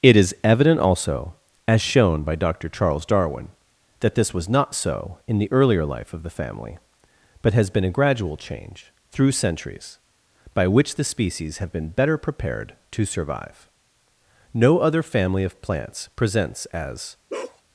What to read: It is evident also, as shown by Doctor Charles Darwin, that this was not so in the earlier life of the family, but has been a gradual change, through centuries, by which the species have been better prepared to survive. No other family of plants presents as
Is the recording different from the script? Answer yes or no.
no